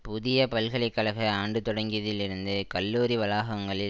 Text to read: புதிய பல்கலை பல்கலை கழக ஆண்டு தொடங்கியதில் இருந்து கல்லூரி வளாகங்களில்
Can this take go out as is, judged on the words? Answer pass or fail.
fail